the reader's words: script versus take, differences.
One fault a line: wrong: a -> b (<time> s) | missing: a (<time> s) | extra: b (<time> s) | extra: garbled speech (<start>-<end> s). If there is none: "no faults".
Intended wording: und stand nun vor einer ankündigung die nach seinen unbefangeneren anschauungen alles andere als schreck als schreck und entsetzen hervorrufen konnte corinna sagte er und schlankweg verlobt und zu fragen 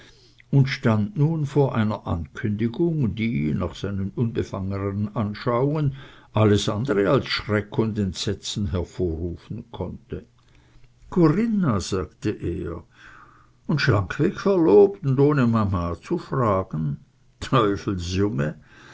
missing: als schreck (7.8 s)
extra: ohne mama (15.2 s)